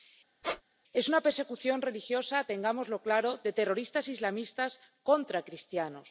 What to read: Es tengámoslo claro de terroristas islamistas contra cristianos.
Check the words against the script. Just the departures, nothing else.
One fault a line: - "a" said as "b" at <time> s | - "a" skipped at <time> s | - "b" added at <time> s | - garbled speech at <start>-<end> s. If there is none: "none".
- "una persecución religiosa" added at 1.1 s